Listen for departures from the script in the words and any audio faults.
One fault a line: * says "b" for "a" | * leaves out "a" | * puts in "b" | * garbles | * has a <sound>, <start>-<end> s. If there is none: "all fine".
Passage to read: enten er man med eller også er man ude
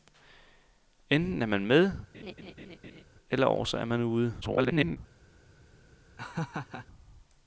* has a laugh, 2.1-3.0 s
* garbles
* has a laugh, 6.2-6.9 s